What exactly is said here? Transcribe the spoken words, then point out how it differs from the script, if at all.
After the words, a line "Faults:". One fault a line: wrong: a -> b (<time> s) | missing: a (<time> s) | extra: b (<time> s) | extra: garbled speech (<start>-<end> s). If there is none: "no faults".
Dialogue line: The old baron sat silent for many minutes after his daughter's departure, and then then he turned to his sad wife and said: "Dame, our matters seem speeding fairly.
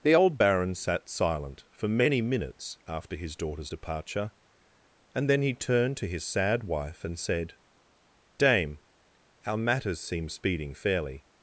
The old baron sat silent for many minutes after his daughter's departure, and then he turned to his sad wife and said: "Dame, our matters seem speeding fairly.
Faults:
missing: then (5.4 s)